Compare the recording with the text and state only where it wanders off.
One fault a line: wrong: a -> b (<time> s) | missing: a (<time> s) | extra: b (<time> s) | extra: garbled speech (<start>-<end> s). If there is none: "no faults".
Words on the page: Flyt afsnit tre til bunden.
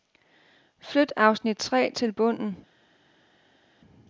no faults